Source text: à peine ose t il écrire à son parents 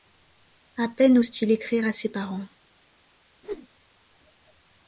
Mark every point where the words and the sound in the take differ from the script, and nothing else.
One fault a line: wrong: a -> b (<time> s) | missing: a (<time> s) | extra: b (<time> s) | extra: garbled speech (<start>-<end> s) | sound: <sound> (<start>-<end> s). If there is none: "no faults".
wrong: son -> ses (1.9 s)
sound: whoosh (3.4-3.7 s)